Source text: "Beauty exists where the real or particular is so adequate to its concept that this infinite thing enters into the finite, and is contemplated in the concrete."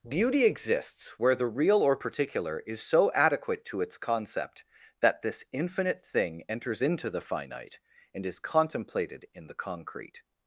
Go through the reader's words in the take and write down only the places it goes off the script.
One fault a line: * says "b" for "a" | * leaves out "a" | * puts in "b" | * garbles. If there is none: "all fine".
all fine